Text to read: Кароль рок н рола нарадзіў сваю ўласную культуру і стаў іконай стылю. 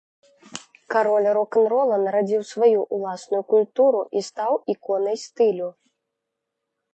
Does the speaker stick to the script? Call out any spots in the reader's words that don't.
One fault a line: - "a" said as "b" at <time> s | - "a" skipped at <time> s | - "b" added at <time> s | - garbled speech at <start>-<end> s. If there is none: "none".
none